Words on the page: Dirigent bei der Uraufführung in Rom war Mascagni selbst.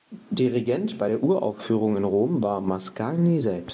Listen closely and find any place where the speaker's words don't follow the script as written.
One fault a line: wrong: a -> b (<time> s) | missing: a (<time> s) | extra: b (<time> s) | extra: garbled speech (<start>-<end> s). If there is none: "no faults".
no faults